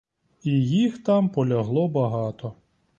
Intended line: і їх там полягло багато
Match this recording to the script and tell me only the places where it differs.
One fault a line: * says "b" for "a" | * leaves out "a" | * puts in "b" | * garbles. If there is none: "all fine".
all fine